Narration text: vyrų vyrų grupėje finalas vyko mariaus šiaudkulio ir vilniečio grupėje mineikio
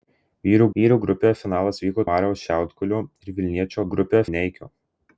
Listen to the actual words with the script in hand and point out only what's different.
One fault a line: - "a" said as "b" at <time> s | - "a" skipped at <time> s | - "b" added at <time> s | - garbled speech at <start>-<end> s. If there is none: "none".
none